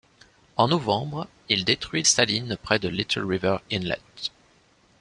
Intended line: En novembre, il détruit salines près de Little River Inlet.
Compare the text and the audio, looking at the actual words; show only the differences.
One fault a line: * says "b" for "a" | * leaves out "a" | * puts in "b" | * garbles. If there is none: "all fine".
all fine